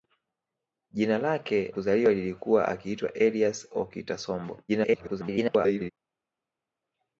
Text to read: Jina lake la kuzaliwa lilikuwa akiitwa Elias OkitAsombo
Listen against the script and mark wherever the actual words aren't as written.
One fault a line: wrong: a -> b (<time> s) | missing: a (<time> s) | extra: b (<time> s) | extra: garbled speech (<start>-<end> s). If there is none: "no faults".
missing: la (1.7 s)
extra: garbled speech (4.7-5.9 s)